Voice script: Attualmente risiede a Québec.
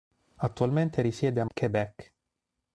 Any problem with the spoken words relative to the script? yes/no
no